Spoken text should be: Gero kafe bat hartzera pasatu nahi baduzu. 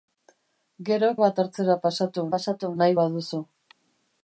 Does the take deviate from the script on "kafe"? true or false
true